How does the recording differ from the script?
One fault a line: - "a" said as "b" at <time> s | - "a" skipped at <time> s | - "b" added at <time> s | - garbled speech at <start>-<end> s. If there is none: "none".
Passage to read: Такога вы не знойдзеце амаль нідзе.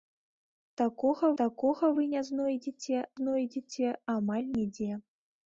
- "такога" added at 1.4 s
- "знойдзеце" added at 3.2 s